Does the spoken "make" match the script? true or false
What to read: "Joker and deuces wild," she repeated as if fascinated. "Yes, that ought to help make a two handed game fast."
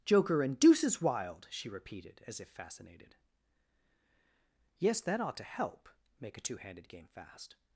true